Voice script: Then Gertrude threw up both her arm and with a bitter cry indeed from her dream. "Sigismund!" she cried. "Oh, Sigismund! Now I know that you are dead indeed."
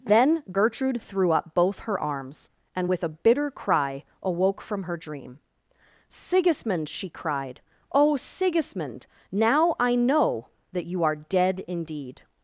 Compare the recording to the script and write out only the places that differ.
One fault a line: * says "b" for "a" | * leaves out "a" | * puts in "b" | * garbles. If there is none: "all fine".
* says "arms" for "arm"
* says "awoke" for "indeed"